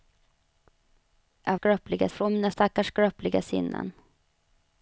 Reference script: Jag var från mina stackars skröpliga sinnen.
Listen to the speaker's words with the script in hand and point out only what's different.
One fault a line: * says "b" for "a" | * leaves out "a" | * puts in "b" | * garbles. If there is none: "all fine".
* says "skröpliga" for "var"